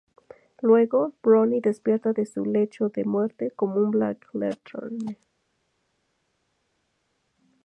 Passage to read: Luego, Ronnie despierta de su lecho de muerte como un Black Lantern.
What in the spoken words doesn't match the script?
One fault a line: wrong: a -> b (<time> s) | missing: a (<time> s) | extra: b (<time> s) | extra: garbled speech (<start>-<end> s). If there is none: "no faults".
no faults